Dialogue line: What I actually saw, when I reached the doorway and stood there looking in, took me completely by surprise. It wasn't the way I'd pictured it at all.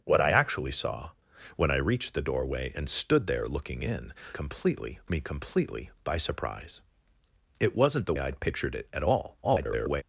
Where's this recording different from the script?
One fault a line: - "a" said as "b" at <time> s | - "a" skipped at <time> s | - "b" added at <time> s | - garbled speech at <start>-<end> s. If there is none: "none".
- "took" said as "completely" at 4.3 s
- "way" skipped at 8.1 s
- garbled speech at 9.4-10.0 s